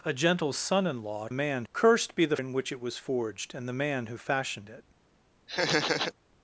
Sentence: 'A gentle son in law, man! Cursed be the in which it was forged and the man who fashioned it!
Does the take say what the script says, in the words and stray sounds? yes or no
no